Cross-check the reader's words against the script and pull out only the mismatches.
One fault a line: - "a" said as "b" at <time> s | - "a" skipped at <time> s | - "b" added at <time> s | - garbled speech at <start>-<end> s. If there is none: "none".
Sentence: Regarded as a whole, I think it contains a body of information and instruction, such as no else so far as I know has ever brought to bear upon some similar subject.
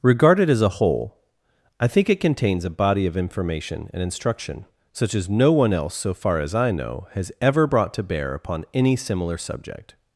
- "one" added at 5.5 s
- "some" said as "any" at 8.7 s